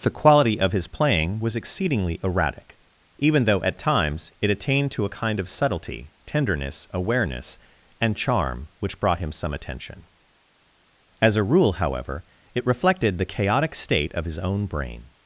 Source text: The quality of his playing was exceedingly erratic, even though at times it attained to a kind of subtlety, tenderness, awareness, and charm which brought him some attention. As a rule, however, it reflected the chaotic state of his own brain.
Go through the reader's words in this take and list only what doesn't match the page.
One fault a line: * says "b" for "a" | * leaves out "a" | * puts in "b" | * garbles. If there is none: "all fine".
all fine